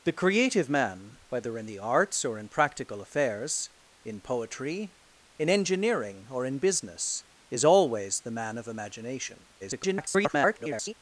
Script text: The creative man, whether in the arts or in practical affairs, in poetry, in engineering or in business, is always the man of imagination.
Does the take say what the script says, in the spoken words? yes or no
no